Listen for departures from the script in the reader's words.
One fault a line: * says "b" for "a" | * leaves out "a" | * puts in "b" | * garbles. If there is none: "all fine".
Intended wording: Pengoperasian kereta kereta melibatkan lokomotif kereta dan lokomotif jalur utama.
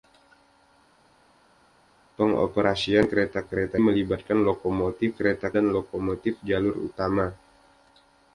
all fine